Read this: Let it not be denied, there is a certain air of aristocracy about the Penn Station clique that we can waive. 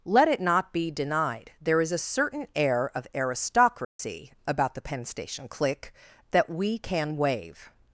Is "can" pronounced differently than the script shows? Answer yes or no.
no